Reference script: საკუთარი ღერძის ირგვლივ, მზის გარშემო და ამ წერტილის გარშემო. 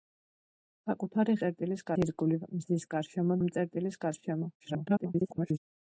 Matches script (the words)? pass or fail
fail